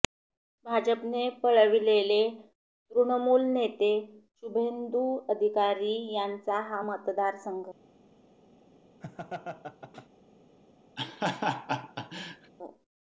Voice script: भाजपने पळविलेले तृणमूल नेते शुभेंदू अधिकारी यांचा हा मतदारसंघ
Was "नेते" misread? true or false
false